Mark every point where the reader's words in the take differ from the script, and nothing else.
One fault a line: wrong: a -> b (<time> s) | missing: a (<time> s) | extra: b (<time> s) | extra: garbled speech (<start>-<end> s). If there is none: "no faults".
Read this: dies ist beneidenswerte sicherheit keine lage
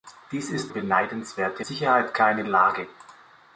no faults